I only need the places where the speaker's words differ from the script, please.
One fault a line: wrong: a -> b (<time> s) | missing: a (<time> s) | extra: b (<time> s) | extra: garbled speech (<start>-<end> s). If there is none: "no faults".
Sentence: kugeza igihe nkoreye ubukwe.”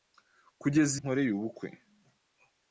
missing: igihe (0.9 s)